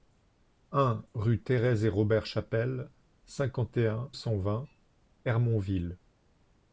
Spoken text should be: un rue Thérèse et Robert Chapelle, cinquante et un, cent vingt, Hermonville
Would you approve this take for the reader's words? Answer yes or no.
yes